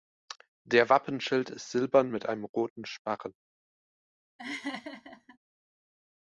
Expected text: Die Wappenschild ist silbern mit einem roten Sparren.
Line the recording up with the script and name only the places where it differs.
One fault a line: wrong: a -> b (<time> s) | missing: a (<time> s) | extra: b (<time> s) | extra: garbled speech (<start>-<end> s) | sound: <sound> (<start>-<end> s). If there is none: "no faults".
wrong: Die -> Der (0.6 s)
sound: laugh (4.4-5.4 s)